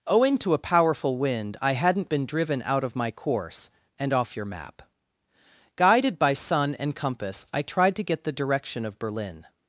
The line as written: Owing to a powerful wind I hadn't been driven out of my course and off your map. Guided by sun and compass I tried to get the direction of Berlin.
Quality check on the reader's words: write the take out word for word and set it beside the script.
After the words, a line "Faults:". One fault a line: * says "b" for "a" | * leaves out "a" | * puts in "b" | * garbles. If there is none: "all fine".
Owing to a powerful wind I hadn't been driven out of my course and off your map. Guided by sun and compass I tried to get the direction of Berlin.
Faults:
all fine